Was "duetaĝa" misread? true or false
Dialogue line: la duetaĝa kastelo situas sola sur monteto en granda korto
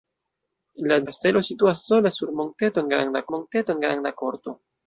true